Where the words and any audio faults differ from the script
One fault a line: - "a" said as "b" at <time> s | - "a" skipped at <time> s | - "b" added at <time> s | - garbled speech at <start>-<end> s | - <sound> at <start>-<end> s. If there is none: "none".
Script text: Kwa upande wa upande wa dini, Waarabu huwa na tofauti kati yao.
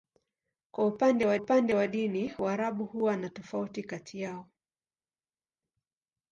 none